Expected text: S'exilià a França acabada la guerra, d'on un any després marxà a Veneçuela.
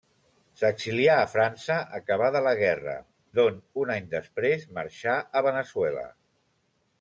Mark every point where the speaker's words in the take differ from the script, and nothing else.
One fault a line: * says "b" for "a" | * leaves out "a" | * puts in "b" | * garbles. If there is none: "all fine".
all fine